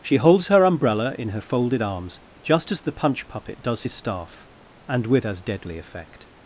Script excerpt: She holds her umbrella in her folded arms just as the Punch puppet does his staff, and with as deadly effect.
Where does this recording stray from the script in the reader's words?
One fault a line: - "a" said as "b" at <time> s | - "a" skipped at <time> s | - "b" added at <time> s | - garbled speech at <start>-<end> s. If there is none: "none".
none